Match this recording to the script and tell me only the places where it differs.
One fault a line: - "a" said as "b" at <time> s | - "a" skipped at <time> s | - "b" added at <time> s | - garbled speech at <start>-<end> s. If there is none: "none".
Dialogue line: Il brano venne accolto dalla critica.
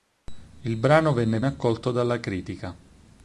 none